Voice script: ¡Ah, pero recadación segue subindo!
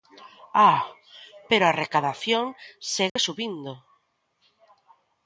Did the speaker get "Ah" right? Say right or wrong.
right